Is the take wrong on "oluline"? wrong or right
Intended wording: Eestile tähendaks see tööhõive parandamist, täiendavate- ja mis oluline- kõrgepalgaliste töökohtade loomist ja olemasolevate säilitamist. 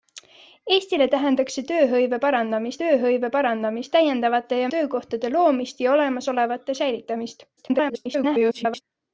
wrong